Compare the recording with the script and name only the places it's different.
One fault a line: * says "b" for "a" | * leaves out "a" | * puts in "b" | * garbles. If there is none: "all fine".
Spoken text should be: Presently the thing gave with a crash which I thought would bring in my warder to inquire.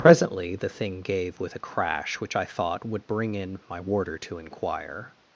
all fine